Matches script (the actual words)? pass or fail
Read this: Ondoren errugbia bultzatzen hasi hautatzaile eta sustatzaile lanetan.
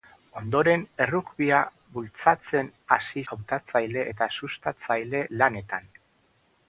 pass